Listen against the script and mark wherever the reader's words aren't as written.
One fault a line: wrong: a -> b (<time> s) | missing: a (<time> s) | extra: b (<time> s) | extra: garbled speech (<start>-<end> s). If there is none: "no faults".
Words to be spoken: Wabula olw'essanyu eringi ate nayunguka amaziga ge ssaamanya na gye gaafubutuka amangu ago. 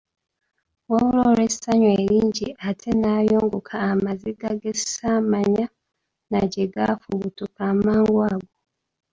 no faults